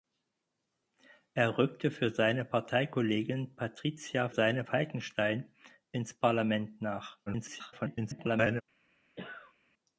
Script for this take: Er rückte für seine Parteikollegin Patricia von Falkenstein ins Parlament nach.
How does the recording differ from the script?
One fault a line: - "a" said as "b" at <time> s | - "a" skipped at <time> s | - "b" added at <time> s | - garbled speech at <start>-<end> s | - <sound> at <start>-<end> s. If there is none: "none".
- "von" said as "seine" at 4.3 s
- garbled speech at 7.3-8.6 s
- cough at 9.2-9.5 s